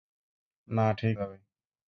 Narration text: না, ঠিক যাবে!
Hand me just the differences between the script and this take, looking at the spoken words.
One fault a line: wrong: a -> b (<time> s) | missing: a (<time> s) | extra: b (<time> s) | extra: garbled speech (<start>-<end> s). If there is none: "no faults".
no faults